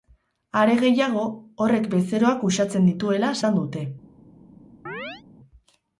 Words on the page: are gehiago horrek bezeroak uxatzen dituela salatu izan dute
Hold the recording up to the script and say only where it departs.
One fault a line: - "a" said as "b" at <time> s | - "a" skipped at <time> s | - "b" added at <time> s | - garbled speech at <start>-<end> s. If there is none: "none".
- "salatu" skipped at 3.3 s